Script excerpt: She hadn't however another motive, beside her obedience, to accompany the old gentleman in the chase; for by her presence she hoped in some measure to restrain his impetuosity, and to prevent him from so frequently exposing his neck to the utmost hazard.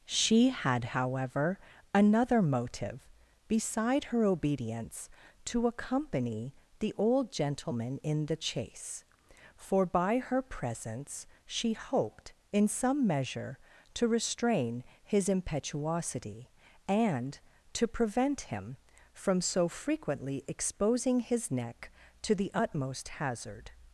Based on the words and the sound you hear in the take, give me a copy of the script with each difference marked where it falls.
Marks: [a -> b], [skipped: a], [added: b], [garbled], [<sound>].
She [hadn't -> had] however another motive, beside her obedience, to accompany the old gentleman in the chase; for by her presence she hoped in some measure to restrain his impetuosity, and to prevent him from so frequently exposing his neck to the utmost hazard.